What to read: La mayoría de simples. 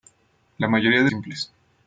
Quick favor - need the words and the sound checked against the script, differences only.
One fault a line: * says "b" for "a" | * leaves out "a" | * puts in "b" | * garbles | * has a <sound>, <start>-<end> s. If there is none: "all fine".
all fine